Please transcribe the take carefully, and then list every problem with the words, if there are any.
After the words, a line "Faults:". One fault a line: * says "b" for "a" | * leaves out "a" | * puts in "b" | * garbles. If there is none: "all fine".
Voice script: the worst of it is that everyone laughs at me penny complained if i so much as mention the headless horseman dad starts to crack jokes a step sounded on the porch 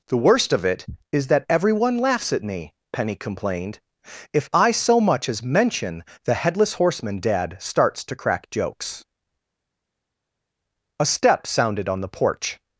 the worst of it is that everyone laughs at me penny complained if i so much as mention the headless horseman dad starts to crack jokes a step sounded on the porch
Faults:
all fine